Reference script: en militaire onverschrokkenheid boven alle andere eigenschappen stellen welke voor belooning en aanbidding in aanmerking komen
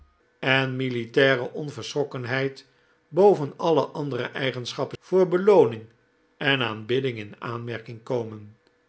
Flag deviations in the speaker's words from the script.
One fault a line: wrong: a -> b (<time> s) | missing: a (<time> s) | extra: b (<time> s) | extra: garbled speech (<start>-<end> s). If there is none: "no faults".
missing: stellen welke (5.0 s)